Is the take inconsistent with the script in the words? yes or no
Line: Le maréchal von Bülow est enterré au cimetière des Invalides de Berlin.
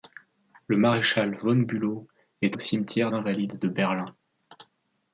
yes